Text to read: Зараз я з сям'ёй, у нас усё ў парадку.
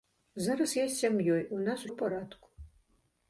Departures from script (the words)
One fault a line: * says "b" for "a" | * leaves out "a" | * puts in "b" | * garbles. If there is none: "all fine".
* leaves out "усё"